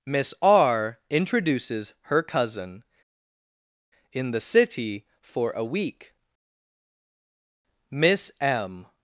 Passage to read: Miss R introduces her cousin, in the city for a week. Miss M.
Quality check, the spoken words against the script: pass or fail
pass